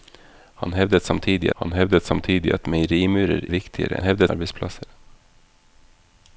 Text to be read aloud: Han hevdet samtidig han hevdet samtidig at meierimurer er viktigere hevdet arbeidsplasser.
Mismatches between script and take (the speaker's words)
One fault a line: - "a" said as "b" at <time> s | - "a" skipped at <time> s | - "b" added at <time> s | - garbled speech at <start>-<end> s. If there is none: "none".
none